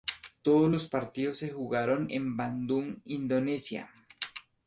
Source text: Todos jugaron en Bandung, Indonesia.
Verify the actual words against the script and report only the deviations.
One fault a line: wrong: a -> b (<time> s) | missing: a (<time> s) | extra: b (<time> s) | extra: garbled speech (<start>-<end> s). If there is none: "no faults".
extra: los partidos se (0.7 s)